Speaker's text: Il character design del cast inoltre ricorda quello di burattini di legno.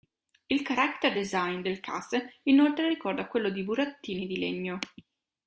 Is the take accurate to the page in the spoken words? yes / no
yes